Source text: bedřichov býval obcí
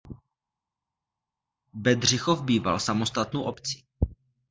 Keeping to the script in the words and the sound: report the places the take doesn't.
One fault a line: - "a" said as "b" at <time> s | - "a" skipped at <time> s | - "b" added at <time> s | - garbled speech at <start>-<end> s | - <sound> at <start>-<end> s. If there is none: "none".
- "samostatnou" added at 2.8 s